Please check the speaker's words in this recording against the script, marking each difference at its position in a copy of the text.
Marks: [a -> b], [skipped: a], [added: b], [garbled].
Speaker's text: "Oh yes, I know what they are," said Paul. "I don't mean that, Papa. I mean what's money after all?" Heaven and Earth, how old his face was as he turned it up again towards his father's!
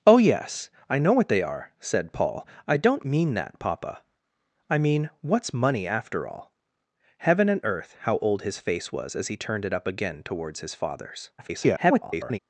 "Oh yes, I know what they are," said Paul. "I don't mean that, Papa. I mean what's money after all?" Heaven and Earth, how old his face was as he turned it up again towards his father's! [garbled]